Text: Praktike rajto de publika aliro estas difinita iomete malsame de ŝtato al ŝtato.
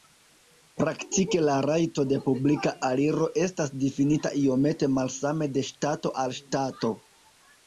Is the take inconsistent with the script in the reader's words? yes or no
yes